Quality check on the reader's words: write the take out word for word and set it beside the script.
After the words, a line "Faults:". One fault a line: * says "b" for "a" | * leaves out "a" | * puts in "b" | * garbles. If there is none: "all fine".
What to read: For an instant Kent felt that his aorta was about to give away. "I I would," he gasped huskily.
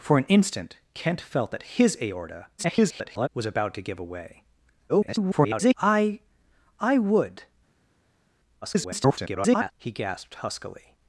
For an instant Kent felt that his aorta [garbled] was about to give away. [garbled] "I I would," [garbled] he gasped huskily.
Faults:
* garbles
* garbles
* garbles